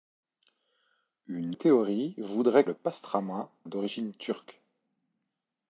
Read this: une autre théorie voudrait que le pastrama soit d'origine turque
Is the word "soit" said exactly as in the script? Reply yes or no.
no